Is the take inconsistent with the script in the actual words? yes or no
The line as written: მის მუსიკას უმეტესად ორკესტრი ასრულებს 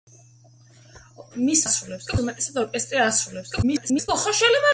yes